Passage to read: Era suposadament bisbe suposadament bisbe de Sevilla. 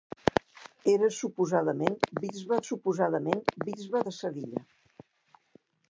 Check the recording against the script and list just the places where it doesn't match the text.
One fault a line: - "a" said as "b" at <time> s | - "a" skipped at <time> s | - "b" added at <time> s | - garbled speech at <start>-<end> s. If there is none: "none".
none